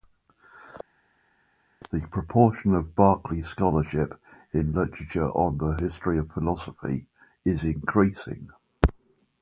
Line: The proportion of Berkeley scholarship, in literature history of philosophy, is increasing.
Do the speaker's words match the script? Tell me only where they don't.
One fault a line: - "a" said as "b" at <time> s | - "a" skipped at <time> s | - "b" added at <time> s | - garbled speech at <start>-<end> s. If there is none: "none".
- "on the" added at 5.3 s